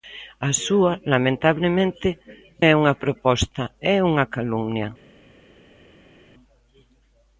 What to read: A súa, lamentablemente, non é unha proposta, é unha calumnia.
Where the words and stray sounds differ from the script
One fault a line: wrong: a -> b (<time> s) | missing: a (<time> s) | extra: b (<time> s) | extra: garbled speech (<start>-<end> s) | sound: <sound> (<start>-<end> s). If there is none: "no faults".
missing: non (2.1 s)